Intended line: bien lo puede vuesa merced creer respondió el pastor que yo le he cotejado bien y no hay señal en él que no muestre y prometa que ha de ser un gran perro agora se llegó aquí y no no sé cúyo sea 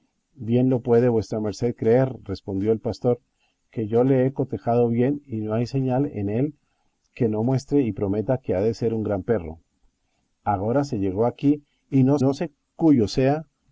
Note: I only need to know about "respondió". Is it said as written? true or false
true